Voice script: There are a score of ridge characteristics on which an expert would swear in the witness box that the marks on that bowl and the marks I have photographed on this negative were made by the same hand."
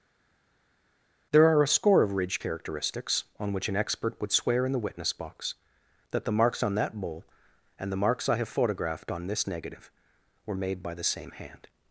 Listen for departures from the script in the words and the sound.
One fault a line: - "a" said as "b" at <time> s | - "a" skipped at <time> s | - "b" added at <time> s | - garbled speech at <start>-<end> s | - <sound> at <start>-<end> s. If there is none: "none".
none